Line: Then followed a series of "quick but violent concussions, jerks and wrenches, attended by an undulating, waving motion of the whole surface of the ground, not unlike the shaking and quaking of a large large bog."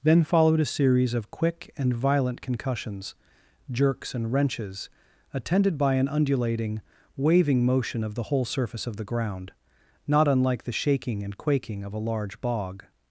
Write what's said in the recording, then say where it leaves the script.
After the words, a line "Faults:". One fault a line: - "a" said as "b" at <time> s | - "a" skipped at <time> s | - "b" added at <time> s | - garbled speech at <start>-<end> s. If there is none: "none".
Then followed a series of "quick and violent concussions, jerks and wrenches, attended by an undulating, waving motion of the whole surface of the ground, not unlike the shaking and quaking of a large bog."
Faults:
- "but" said as "and" at 1.8 s
- "large" skipped at 12.4 s